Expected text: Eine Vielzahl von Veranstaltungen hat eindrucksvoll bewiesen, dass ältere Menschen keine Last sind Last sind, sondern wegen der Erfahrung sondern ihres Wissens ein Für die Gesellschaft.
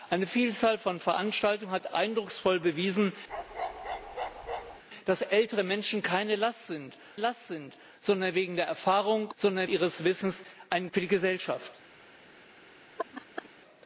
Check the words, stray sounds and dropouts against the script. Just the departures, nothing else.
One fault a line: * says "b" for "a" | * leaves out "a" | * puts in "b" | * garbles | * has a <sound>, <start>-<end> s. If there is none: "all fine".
* has a bark, 3.3-4.8 s
* has a laugh, 13.0-13.5 s